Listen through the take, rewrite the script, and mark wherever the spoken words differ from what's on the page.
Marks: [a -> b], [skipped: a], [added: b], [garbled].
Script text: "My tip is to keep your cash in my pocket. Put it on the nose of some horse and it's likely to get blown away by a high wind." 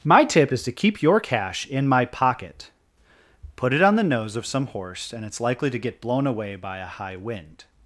"My tip is to keep your cash in my pocket. Put it on the nose of some horse and it's likely to get blown away by a high wind."